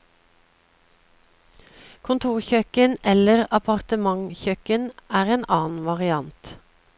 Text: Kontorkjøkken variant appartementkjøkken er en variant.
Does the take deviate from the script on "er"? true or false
false